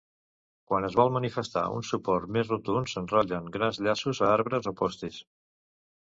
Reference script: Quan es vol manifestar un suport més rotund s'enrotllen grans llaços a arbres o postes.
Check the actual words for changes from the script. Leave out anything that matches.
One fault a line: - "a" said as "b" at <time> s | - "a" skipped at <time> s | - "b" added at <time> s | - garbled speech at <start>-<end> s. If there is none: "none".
none